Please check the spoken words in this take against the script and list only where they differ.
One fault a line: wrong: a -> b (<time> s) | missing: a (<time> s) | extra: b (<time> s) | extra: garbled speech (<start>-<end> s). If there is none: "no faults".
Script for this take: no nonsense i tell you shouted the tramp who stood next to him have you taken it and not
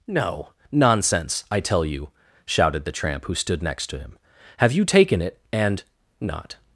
no faults